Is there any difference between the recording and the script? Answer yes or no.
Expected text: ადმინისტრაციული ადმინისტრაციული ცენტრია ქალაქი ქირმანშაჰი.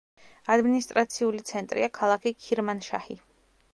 yes